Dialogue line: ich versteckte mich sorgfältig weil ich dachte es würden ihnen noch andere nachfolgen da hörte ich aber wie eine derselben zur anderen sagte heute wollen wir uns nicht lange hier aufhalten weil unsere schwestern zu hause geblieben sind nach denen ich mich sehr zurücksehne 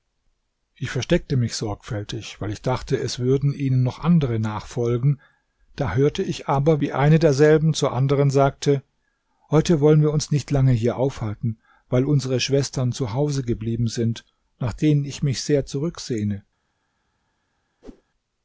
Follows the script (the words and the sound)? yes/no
no